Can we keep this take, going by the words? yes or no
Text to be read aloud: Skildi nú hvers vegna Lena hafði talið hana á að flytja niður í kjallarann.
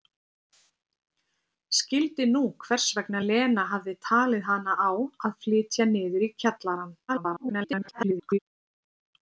no